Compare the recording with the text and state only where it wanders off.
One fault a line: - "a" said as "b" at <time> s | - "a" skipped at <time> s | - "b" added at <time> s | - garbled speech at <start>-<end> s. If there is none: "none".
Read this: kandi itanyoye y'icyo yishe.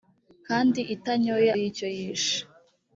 none